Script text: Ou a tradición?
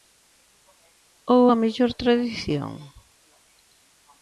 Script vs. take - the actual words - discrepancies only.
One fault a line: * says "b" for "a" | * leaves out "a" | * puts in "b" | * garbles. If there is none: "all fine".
* puts in "mellor"